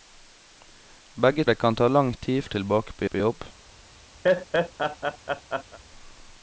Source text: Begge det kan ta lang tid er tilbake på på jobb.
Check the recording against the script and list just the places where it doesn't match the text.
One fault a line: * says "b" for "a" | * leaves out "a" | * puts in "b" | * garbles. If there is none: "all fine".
all fine